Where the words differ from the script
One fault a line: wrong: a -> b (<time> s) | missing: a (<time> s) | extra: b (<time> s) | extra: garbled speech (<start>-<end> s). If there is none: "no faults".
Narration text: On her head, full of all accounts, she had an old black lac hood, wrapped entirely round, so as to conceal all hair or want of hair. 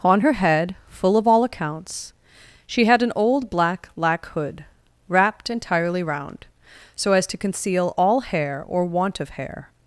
no faults